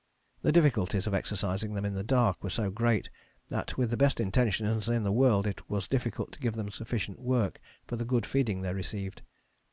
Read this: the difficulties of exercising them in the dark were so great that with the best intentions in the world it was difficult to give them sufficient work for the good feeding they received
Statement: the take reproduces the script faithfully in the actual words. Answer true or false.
true